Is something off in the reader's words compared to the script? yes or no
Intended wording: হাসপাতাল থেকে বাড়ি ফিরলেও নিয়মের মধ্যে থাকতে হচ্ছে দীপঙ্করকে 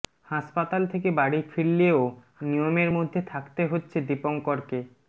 no